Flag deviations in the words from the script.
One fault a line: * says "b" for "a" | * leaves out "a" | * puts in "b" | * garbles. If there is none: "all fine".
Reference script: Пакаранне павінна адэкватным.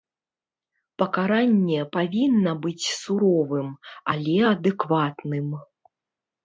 * puts in "быць суровым але"